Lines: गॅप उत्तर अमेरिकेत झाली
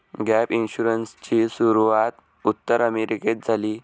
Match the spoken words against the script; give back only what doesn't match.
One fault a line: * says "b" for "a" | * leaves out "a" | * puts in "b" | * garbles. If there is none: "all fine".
* puts in "इन्शुरन्सची सुरूवात"